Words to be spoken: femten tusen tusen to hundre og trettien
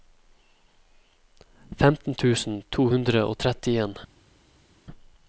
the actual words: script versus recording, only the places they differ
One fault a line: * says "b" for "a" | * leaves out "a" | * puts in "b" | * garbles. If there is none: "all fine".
* leaves out "tusen"